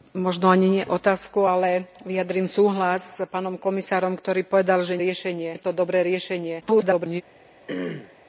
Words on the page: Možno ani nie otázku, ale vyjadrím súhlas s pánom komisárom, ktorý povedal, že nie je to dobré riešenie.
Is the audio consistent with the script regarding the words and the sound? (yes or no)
no